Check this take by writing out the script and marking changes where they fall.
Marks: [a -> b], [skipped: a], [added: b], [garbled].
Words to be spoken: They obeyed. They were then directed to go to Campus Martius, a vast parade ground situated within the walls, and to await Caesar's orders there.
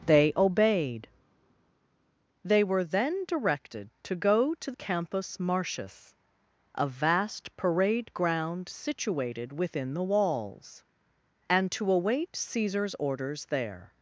They obeyed. They were then directed to go to Campus Martius, a vast parade ground situated within the walls, and to await Caesar's orders there.